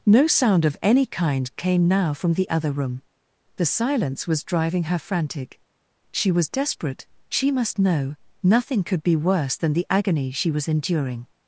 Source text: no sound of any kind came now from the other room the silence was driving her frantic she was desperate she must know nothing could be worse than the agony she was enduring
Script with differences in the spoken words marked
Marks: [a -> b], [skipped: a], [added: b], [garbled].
no sound of any kind came now from the other room the silence was driving her frantic she was desperate she must know nothing could be worse than the agony she was enduring